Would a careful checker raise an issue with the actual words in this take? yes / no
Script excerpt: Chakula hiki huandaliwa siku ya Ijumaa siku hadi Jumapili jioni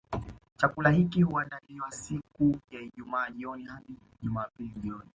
yes